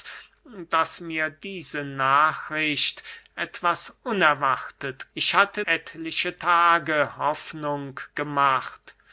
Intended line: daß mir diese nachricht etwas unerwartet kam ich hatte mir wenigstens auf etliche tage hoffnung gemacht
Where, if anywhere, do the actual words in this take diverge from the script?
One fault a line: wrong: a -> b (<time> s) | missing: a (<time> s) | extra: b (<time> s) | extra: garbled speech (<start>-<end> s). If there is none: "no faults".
missing: kam (5.1 s)
missing: mir wenigstens auf (5.6 s)